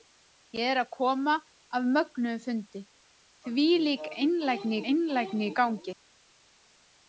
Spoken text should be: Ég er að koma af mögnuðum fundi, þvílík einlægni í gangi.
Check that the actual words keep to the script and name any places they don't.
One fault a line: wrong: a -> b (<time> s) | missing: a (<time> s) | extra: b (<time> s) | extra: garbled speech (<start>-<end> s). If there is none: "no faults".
extra: einlægni (4.9 s)